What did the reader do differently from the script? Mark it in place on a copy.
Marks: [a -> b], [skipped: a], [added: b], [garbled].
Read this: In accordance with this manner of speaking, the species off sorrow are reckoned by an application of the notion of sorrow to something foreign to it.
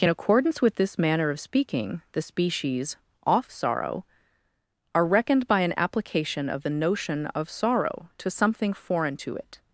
In accordance with this manner of speaking, the species off sorrow are reckoned by an application of the notion of sorrow to something foreign to it.